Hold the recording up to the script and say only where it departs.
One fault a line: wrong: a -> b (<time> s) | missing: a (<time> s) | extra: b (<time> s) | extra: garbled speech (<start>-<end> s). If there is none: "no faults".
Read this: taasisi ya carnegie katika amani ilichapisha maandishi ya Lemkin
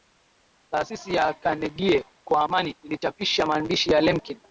wrong: katika -> kwa (2.2 s)